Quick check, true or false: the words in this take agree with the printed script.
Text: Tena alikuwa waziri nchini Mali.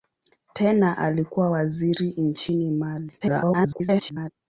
false